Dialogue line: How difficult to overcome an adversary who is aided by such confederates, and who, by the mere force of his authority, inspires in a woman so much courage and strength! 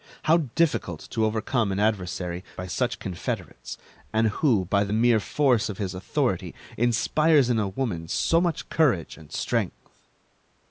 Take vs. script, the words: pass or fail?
fail